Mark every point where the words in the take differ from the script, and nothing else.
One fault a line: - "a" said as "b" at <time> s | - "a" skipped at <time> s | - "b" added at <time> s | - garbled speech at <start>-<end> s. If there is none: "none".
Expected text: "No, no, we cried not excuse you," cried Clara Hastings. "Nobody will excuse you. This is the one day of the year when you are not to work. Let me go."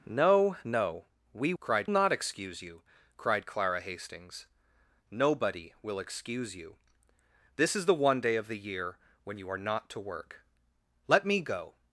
none